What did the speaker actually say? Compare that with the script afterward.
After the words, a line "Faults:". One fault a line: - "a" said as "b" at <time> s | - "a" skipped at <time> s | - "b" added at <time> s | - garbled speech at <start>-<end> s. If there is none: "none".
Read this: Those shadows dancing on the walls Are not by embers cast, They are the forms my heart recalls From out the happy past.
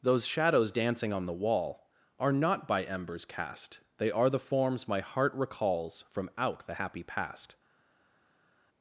Those shadows dancing on the wall Are not by embers cast, They are the forms my heart recalls From out the happy past.
Faults:
- "walls" said as "wall" at 1.3 s